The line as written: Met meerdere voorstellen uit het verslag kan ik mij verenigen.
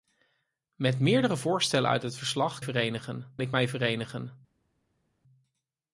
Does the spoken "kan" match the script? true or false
false